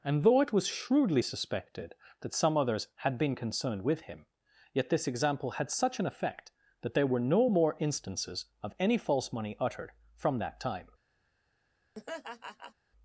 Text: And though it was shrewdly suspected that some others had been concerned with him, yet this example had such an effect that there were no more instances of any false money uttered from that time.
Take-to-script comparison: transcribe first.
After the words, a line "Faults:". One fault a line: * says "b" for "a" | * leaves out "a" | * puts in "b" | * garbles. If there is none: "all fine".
And though it was shrewdly suspected that some others had been concerned with him, yet this example had such an effect that there were no more instances of any false money uttered from that time.
Faults:
all fine